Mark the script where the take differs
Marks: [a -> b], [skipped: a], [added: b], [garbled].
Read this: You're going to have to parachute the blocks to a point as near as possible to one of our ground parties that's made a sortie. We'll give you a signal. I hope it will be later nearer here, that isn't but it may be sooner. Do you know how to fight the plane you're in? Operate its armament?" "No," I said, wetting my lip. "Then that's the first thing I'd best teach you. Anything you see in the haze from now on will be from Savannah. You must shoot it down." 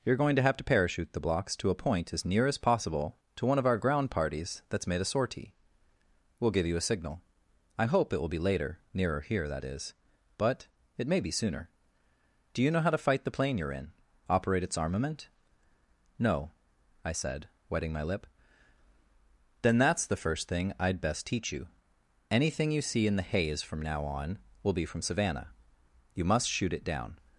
You're going to have to parachute the blocks to a point as near as possible to one of our ground parties that's made a sortie. We'll give you a signal. I hope it will be later nearer here, that [isn't -> is] but it may be sooner. Do you know how to fight the plane you're in? Operate its armament?" "No," I said, wetting my lip. "Then that's the first thing I'd best teach you. Anything you see in the haze from now on will be from Savannah. You must shoot it down."